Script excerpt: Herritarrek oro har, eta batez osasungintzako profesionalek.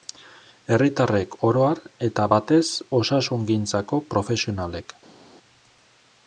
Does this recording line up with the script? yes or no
yes